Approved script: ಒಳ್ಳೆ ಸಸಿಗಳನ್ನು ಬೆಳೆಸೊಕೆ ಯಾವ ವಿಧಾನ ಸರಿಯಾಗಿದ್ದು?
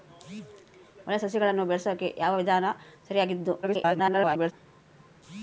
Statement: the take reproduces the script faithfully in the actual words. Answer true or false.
false